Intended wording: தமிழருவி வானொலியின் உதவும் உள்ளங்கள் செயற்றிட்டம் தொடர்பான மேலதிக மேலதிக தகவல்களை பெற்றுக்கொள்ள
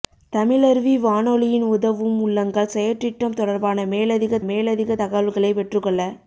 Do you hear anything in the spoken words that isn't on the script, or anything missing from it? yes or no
no